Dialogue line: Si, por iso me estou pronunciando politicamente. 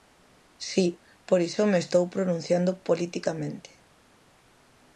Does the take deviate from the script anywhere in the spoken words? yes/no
no